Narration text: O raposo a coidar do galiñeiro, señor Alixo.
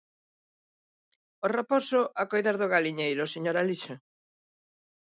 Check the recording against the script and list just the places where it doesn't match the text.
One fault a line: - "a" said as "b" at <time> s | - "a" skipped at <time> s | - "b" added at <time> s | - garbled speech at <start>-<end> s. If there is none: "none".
none